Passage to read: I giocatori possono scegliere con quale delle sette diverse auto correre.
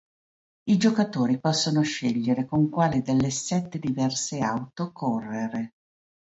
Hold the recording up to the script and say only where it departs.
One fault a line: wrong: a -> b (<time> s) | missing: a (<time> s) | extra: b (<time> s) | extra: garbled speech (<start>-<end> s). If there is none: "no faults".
no faults